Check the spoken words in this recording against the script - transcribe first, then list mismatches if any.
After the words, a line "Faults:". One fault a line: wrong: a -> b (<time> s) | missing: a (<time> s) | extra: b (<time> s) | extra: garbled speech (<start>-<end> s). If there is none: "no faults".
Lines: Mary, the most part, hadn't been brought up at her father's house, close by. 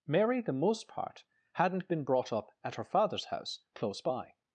Mary, the most part, hadn't been brought up at her father's house, close by.
Faults:
no faults